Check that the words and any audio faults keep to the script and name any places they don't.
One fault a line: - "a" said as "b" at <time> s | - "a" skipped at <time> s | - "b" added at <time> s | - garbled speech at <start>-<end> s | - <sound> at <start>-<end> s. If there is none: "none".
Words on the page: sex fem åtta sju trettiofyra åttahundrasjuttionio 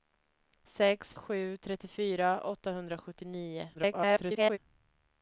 - "fem åtta" skipped at 1.1 s
- garbled speech at 3.7-4.6 s